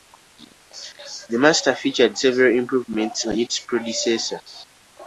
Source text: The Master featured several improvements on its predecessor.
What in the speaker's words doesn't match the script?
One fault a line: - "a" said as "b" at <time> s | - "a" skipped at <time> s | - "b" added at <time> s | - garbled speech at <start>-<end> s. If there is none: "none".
none